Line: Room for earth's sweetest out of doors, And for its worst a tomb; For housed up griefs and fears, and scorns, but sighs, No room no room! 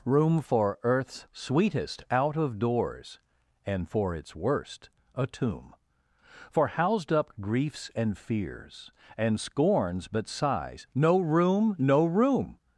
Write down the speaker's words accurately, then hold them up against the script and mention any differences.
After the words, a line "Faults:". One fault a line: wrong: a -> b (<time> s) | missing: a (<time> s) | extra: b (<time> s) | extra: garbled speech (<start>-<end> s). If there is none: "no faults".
Room for earth's sweetest out of doors, And for its worst a tomb; For housed up griefs and fears, and scorns, but sighs, No room no room!
Faults:
no faults